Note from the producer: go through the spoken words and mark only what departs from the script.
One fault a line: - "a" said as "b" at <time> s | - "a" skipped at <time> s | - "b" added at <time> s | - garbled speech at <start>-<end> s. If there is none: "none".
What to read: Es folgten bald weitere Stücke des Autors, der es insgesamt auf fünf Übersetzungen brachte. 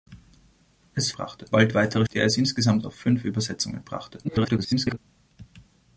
- "folgten" said as "brachte" at 1.1 s
- "Stücke des Autors" skipped at 2.1 s
- garbled speech at 4.2-5.0 s